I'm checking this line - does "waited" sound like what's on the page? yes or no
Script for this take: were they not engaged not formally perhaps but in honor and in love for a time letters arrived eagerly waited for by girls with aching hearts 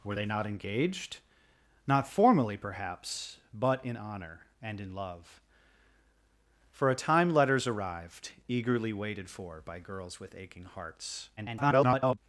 yes